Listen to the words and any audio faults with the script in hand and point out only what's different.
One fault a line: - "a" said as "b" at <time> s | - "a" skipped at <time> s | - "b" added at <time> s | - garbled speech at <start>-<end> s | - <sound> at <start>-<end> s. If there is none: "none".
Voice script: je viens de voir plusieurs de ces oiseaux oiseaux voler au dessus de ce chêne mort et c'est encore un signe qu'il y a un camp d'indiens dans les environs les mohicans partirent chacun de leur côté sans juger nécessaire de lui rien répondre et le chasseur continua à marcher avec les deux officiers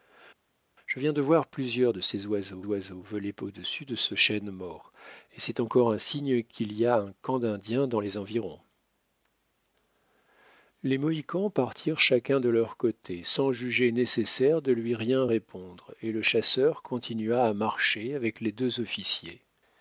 none